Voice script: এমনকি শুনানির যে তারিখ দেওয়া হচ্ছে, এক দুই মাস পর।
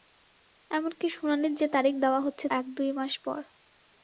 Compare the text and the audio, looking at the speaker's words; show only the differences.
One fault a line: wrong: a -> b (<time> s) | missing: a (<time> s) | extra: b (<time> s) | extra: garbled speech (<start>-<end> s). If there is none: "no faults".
no faults